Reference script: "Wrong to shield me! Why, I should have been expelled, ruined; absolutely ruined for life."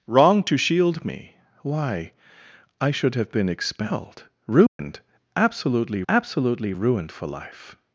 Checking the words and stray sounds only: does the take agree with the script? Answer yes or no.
no